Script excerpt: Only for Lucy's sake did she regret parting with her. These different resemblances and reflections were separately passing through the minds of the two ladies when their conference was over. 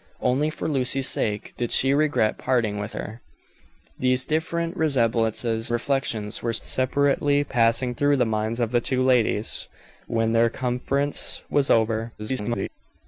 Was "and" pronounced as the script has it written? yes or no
no